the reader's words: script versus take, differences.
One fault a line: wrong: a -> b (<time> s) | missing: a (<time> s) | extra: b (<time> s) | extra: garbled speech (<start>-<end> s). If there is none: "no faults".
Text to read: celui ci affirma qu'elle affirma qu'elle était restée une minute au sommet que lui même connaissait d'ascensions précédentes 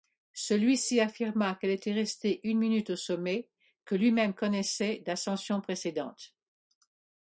missing: affirma qu'elle (1.7 s)